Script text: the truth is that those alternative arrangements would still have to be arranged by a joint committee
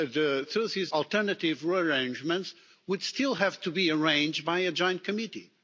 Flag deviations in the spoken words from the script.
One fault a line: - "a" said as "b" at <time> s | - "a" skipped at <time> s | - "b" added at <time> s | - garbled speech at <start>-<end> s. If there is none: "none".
- "that those" skipped at 0.9 s